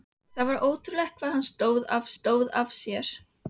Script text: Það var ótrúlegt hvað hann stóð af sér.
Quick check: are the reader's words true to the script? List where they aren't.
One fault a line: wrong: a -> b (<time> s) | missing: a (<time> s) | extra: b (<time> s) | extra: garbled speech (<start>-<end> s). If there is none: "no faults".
extra: stóð af (2.2 s)